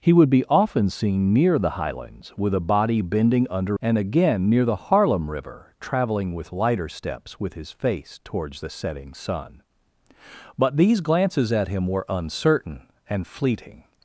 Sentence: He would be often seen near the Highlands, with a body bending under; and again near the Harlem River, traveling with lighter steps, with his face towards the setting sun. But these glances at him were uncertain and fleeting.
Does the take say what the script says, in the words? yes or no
yes